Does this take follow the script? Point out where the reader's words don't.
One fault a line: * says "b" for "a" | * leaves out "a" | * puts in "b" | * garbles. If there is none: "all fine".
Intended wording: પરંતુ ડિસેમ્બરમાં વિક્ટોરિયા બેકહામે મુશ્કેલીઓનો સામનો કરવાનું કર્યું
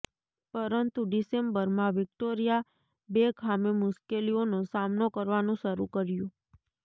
* puts in "શરૂ"